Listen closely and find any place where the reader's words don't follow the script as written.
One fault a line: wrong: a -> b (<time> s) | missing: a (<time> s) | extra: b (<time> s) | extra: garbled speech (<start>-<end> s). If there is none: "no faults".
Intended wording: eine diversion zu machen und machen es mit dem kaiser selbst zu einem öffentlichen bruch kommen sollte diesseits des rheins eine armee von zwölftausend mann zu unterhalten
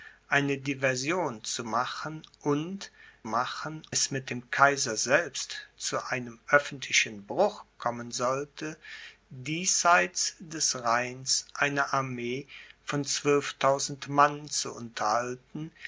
no faults